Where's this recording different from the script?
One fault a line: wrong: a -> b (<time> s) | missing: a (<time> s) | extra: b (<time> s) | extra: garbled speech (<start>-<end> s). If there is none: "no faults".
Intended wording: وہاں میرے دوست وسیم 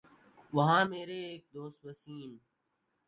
extra: ایک (1.3 s)